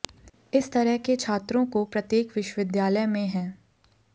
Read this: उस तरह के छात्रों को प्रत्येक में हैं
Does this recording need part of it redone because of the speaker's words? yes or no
yes